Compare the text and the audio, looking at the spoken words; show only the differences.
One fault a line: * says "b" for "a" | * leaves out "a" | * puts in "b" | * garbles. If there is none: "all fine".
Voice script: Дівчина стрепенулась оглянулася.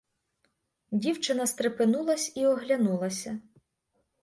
* puts in "і"